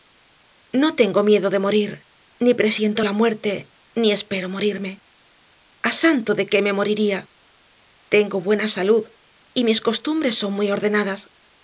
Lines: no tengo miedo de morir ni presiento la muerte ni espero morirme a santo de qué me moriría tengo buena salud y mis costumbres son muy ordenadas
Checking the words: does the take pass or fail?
pass